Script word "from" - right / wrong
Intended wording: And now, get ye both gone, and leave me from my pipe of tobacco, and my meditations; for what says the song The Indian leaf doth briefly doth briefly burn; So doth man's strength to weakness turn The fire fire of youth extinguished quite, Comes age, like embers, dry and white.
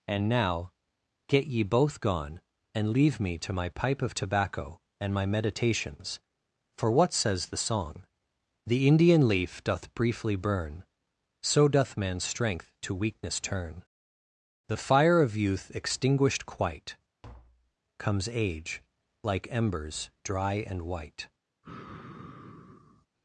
wrong